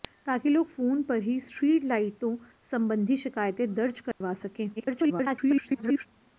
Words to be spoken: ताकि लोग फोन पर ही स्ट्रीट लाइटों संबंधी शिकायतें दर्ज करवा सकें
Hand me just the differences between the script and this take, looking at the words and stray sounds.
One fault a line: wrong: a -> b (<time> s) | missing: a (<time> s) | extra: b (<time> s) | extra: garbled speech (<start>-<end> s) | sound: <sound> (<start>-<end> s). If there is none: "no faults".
sound: dropout (4.1-4.2 s)
extra: garbled speech (4.8-6.1 s)